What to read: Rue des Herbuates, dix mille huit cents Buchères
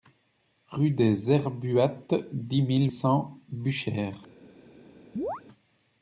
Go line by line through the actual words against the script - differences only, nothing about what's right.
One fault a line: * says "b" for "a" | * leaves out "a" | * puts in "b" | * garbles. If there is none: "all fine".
* leaves out "huit"